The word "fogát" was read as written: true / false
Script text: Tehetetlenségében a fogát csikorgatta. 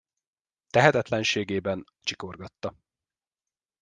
false